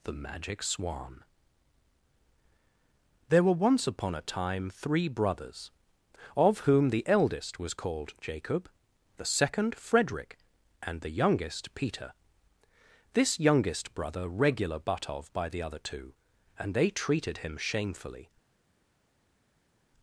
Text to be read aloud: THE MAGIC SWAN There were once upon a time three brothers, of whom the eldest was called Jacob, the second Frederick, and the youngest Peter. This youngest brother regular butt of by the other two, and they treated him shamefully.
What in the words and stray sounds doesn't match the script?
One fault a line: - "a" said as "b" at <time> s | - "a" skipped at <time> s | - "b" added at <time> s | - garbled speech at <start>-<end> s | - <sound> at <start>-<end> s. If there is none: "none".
none